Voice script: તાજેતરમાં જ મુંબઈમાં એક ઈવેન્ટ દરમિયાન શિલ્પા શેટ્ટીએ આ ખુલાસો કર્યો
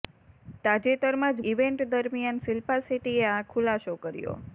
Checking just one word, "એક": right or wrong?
wrong